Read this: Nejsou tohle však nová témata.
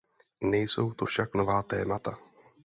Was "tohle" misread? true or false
true